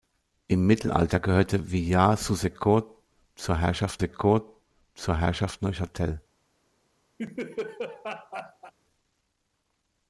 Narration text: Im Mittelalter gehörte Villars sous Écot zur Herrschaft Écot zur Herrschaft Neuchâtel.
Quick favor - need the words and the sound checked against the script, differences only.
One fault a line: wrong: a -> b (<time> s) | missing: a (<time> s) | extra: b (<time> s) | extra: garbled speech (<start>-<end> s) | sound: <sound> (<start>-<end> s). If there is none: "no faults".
sound: laugh (7.2-8.7 s)